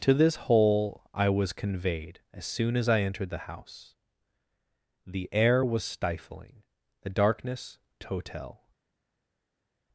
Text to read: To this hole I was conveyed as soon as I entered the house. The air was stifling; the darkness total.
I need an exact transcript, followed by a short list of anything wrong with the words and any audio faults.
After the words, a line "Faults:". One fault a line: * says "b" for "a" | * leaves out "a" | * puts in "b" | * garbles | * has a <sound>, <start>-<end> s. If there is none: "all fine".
To this hole I was conveyed as soon as I entered the house. The air was stifling; the darkness total.
Faults:
all fine